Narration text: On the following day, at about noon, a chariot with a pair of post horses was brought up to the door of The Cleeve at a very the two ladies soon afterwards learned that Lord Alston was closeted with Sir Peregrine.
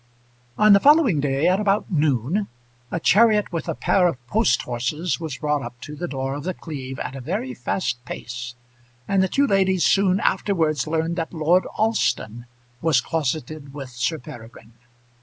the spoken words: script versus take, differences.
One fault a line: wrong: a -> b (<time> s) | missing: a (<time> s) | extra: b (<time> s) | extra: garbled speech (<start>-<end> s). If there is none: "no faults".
extra: fast pace and (7.5 s)